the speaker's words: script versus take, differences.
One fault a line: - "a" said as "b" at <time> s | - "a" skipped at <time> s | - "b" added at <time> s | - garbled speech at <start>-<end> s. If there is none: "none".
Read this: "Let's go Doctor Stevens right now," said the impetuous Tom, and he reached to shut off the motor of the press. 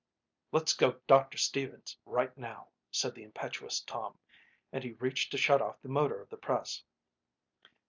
none